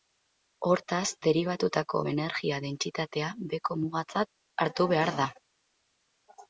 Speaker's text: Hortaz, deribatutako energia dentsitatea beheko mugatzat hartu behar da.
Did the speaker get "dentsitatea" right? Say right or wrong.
right